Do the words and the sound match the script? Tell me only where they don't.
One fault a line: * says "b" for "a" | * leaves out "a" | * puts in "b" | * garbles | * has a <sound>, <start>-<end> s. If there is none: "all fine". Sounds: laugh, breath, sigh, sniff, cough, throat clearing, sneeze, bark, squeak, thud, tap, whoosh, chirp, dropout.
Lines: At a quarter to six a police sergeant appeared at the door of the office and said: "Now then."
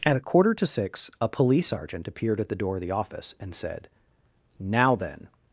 all fine